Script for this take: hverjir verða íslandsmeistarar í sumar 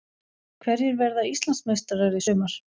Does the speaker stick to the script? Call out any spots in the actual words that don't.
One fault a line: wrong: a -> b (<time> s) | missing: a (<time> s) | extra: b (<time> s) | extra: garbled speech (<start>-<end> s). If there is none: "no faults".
no faults